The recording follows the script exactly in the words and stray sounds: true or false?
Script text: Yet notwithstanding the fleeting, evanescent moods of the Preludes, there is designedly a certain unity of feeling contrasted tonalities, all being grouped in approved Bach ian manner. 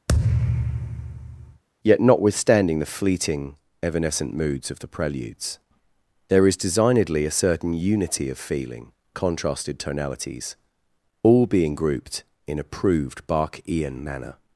false